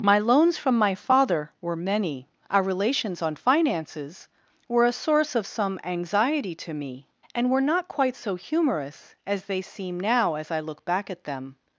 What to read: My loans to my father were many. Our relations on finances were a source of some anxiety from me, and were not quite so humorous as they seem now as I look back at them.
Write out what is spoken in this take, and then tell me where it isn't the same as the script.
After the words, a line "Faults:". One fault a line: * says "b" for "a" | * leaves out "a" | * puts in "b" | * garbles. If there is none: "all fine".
My loans from my father were many. Our relations on finances were a source of some anxiety to me, and were not quite so humorous as they seem now as I look back at them.
Faults:
* says "from" for "to"
* says "to" for "from"